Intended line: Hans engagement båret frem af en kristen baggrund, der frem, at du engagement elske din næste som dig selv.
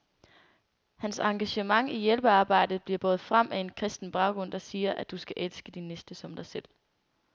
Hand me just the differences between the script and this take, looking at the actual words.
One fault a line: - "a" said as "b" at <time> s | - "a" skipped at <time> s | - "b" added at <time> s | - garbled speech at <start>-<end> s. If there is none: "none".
- "i hjælpearbejdet bliver" added at 1.9 s
- "frem" said as "siger" at 4.6 s
- "engagement" said as "skal" at 5.2 s